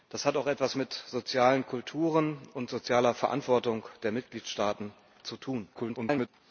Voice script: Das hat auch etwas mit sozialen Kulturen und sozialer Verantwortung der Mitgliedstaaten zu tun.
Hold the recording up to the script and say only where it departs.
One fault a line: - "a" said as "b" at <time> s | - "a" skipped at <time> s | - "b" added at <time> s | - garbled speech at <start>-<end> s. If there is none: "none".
- garbled speech at 5.7-6.3 s